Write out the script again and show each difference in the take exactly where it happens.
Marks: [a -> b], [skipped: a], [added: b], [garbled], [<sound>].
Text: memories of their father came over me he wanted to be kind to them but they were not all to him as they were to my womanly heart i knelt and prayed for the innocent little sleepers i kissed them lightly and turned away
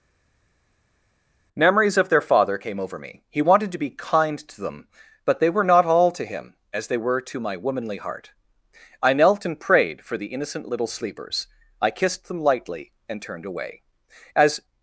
memories of their father came over me he wanted to be kind to them but they were not all to him as they were to my womanly heart i knelt and prayed for the innocent little sleepers i kissed them lightly and turned away [added: as]